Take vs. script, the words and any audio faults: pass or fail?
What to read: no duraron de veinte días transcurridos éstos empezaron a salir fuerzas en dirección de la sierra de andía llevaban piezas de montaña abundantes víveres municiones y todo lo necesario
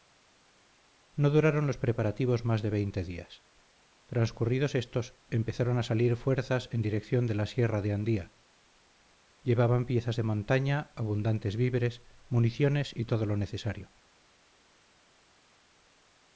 fail